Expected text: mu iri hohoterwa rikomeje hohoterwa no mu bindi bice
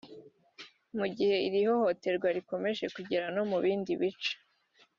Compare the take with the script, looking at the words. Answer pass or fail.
fail